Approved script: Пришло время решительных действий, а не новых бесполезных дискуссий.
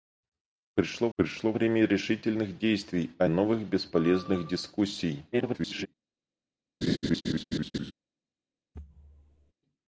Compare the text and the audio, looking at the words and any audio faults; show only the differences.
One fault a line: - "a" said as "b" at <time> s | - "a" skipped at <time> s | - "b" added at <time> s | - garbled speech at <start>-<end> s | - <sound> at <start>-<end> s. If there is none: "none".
- "пришло" added at 1.1 s
- "не" skipped at 3.3 s
- garbled speech at 5.3-5.9 s
- laugh at 6.8-7.9 s
- thud at 8.7-9.5 s